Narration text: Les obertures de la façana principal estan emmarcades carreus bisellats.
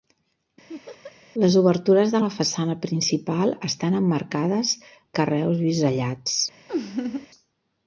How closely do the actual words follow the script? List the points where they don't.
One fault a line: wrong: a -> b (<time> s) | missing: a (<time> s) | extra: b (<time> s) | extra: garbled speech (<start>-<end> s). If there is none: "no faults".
no faults